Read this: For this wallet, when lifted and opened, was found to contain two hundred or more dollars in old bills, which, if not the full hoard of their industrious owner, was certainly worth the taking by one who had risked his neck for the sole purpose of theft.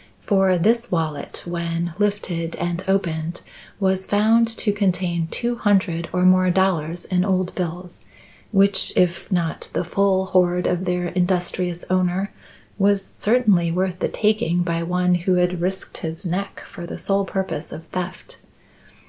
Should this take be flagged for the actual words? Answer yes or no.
no